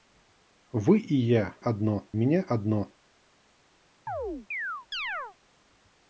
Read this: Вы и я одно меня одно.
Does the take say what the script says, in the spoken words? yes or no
yes